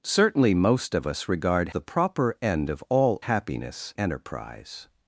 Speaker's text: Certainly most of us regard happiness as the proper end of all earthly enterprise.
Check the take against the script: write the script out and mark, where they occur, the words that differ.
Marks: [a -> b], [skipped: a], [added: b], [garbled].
Certainly most of us regard [skipped: happiness as] the proper end of all [earthly -> happiness] enterprise.